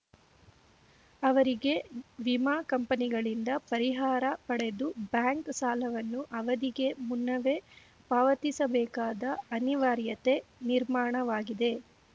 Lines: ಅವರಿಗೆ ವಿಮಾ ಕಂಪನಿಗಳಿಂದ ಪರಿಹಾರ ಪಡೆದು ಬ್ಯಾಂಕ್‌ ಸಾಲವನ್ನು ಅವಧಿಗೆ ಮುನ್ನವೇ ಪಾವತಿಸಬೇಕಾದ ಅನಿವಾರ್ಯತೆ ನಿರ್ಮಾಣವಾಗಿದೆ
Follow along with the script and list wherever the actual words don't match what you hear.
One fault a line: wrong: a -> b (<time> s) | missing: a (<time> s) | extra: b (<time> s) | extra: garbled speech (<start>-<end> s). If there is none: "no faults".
no faults